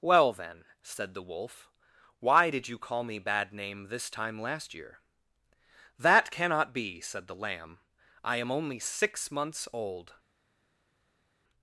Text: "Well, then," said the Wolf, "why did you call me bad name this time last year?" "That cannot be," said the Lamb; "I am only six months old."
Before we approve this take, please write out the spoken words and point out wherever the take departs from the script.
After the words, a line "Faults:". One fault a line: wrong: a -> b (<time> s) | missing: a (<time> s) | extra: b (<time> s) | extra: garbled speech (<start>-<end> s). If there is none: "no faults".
"Well, then," said the Wolf, "why did you call me bad name this time last year?" "That cannot be," said the Lamb; "I am only six months old."
Faults:
no faults